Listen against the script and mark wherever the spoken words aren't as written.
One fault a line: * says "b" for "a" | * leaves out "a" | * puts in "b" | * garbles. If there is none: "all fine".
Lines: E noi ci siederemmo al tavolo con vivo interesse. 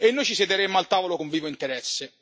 all fine